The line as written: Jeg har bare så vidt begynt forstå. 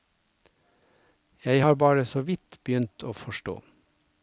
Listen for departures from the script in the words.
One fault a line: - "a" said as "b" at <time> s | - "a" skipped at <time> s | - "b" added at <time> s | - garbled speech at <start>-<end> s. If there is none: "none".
- "å" added at 3.0 s